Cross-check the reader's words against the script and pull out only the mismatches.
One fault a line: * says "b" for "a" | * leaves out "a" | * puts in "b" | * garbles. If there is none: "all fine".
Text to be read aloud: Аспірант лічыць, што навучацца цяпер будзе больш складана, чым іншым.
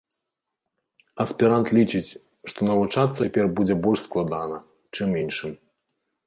all fine